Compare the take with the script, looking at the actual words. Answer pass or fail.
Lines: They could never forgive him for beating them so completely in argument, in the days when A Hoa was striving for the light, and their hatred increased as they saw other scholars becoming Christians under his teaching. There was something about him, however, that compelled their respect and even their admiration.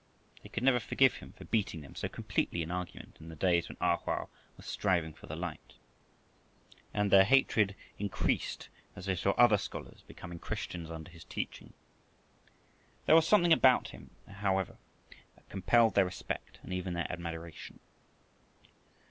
pass